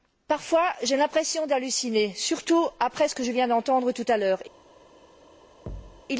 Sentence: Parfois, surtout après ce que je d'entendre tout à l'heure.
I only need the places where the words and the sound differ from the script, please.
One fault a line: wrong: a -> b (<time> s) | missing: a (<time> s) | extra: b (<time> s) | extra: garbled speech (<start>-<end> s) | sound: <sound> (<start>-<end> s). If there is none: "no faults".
extra: j'ai l'impression d'halluciner (0.8 s)
extra: viens (3.3 s)
sound: thud (5.7-6.0 s)